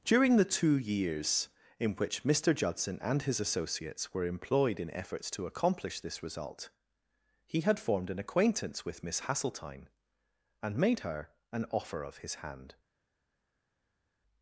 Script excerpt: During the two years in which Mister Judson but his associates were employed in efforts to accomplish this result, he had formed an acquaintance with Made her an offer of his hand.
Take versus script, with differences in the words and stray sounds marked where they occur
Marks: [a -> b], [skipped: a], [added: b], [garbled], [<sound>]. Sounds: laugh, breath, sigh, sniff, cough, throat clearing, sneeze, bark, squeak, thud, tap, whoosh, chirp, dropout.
During the two years in which Mister Judson [but -> and] his associates were employed in efforts to accomplish this result, he had formed an acquaintance with [added: Miss Hasseltine and] Made her an offer of his hand.